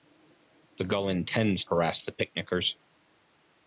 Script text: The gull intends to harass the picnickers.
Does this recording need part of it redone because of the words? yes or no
yes